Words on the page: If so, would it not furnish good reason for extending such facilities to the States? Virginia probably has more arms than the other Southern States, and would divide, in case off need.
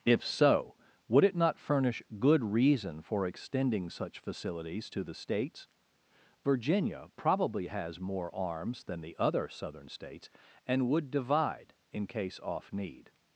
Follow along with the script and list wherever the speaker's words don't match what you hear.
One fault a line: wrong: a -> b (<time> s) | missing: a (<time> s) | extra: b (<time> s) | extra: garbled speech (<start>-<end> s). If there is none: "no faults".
no faults